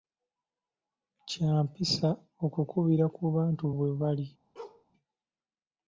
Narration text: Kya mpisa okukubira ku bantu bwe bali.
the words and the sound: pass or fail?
fail